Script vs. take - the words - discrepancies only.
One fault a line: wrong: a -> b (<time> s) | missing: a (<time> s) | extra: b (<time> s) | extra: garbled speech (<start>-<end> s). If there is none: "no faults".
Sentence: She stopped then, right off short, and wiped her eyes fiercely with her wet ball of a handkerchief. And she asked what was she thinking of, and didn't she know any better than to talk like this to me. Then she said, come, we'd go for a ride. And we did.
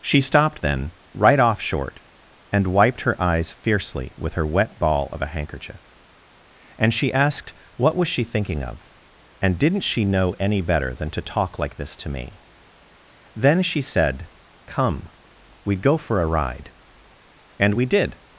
no faults